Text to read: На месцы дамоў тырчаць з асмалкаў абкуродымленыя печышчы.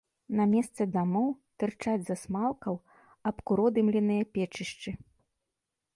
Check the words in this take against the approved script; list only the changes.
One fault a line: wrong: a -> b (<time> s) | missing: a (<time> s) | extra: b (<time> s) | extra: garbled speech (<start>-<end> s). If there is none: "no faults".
no faults